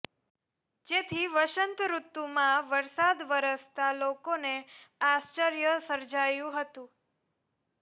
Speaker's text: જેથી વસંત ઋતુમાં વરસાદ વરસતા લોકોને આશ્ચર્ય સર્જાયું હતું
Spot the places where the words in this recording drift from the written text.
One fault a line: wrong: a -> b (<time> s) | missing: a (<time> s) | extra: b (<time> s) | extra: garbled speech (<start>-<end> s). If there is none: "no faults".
no faults